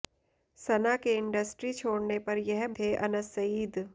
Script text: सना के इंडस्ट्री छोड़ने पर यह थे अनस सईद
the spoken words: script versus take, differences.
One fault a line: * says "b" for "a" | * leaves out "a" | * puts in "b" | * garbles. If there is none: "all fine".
all fine